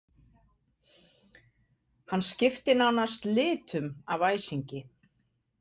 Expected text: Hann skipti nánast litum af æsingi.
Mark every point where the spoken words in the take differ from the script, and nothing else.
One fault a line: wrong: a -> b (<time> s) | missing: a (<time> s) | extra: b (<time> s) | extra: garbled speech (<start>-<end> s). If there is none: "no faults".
no faults